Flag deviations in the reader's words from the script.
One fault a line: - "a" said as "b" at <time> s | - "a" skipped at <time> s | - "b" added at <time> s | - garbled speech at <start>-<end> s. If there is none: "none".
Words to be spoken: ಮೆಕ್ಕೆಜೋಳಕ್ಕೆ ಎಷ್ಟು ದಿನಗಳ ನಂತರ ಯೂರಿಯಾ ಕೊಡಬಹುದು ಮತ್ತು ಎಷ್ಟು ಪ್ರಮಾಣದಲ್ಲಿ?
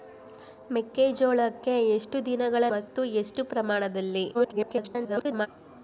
- "ನಂತರ ಯೂರಿಯಾ ಕೊಡಬಹುದು" skipped at 2.6 s
- garbled speech at 4.3-5.5 s